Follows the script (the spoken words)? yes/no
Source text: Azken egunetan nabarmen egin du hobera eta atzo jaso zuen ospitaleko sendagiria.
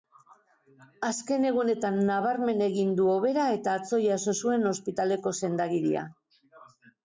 yes